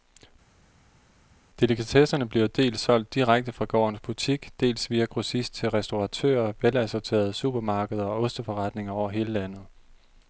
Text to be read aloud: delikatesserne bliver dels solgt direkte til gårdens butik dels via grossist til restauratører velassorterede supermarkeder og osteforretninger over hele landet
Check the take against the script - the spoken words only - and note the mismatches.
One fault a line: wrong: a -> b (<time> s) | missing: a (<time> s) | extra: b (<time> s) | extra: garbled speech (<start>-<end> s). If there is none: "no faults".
wrong: til -> fra (3.5 s)